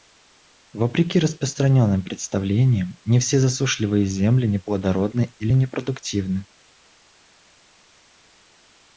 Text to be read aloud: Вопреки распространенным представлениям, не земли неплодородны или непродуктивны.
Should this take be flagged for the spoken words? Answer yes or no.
yes